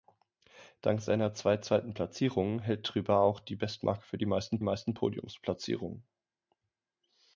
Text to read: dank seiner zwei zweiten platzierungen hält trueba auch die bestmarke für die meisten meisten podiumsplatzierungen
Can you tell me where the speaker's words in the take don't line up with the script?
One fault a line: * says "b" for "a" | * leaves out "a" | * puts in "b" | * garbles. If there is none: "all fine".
all fine